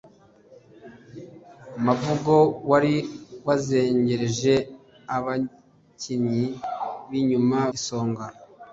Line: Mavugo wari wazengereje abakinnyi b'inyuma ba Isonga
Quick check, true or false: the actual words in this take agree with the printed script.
false